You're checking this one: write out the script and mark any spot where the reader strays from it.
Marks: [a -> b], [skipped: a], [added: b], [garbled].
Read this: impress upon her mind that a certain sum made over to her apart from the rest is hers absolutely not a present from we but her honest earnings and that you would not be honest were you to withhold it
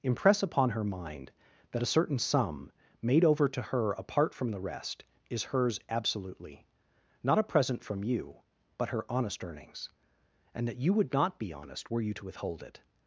impress upon her mind that a certain sum made over to her apart from the rest is hers absolutely not a present from [we -> you] but her honest earnings and that you would not be honest were you to withhold it